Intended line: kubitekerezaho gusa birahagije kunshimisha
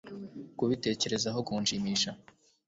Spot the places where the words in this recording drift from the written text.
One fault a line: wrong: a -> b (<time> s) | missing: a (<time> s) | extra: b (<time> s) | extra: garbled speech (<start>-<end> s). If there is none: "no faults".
missing: gusa birahagije (1.4 s)